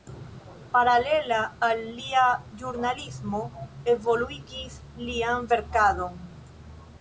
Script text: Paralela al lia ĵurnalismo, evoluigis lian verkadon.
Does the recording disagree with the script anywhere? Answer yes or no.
no